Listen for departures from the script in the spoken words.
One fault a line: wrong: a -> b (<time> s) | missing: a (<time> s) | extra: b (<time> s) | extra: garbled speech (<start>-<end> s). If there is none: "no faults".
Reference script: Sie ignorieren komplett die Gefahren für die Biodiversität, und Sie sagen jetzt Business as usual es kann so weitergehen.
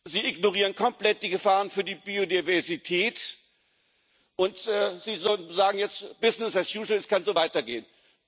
no faults